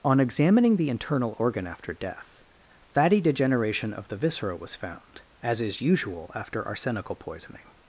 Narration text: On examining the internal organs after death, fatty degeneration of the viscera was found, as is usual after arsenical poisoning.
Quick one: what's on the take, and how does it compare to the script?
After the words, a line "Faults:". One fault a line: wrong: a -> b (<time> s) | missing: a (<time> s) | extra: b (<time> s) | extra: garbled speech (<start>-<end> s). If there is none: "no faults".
On examining the internal organ after death, fatty degeneration of the viscera was found, as is usual after arsenical poisoning.
Faults:
wrong: organs -> organ (1.4 s)